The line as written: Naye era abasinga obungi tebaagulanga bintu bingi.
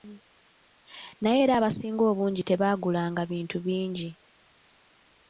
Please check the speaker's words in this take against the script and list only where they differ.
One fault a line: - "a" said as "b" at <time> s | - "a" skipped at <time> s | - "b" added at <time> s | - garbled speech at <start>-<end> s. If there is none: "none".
none